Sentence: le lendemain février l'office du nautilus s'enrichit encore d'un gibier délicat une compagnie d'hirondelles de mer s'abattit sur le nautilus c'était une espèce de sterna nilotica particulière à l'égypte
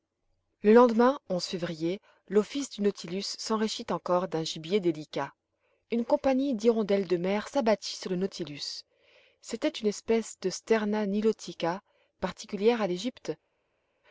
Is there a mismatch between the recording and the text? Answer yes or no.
no